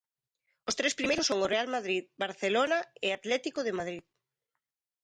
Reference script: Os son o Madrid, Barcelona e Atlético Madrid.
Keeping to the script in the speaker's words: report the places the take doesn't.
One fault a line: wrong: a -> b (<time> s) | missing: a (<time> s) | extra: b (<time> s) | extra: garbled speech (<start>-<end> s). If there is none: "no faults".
extra: tres primeiros (0.8 s)
extra: Real (1.5 s)
extra: de (3.6 s)